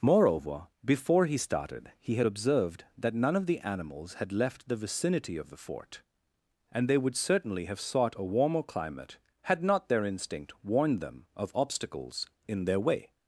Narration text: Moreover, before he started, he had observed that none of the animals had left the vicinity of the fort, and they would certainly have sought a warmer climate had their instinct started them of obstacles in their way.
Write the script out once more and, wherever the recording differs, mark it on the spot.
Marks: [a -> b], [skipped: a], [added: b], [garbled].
Moreover, before he started, he had observed that none of the animals had left the vicinity of the fort, and they would certainly have sought a warmer climate had [added: not] their instinct [started -> warned] them of obstacles in their way.